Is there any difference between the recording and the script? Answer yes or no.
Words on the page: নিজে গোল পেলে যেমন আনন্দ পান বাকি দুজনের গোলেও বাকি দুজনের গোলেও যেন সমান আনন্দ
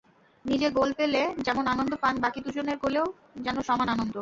yes